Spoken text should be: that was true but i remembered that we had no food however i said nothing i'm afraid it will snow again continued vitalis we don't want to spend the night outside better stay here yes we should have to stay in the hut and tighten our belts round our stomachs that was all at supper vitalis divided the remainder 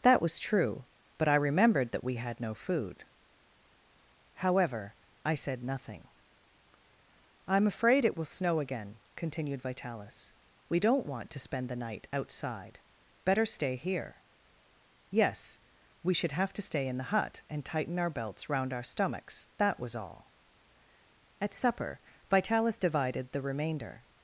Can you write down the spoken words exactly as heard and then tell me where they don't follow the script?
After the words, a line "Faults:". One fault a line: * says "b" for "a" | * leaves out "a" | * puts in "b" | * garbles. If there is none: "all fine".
that was true but i remembered that we had no food however i said nothing i'm afraid it will snow again continued vitalis we don't want to spend the night outside better stay here yes we should have to stay in the hut and tighten our belts round our stomachs that was all at supper vitalis divided the remainder
Faults:
all fine